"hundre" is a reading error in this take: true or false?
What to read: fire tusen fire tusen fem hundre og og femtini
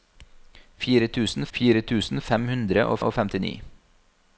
false